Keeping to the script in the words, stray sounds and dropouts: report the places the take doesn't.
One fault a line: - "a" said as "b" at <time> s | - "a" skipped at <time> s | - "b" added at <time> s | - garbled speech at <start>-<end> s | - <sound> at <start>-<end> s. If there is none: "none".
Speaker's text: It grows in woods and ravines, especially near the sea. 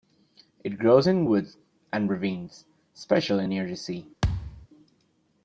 - thud at 4.2-4.7 s